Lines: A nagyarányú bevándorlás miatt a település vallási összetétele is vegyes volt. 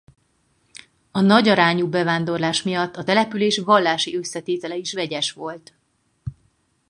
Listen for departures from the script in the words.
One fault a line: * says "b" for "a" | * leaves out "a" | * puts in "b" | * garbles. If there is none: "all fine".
all fine